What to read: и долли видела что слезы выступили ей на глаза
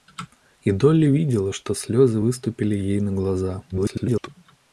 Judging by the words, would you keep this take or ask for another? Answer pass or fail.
fail